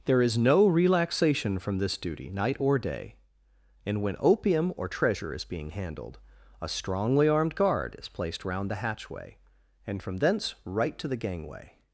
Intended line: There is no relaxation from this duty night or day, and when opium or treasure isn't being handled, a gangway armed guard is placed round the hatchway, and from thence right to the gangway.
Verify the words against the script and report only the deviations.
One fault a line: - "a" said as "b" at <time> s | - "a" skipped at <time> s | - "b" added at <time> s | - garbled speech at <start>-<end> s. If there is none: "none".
- "isn't" said as "is" at 5.3 s
- "gangway" said as "strongly" at 6.7 s